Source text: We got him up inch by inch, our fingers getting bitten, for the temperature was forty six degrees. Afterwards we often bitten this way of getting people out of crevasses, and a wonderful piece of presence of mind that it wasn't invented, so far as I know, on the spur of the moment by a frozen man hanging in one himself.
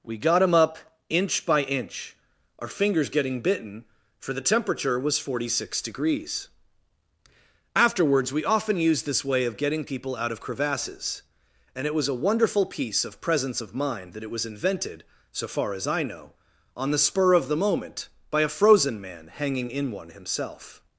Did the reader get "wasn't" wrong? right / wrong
wrong